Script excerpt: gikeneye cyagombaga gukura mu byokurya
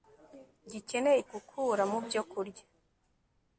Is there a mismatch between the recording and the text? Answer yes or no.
yes